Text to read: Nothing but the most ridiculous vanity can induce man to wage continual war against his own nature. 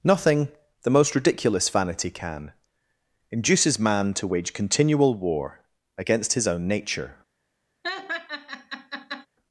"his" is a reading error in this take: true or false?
false